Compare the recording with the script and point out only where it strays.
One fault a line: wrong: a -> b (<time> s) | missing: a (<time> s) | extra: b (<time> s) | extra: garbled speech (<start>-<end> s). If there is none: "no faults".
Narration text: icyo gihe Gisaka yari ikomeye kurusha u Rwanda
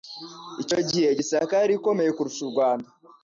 no faults